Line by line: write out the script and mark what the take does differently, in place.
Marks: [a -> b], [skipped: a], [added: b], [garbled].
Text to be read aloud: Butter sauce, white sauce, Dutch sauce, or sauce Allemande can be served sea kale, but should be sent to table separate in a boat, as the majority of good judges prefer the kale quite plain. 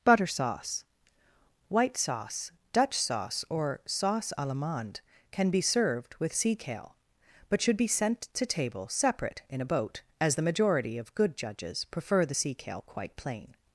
Butter sauce, white sauce, Dutch sauce, or sauce Allemande can be served [added: with] sea kale, but should be sent to table separate in a boat, as the majority of good judges prefer the [added: sea] kale quite plain.